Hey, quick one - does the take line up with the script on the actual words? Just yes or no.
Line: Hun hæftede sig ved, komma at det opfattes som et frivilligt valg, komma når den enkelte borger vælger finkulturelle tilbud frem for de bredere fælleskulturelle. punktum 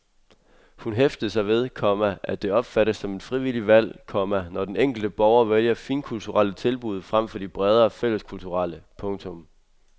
yes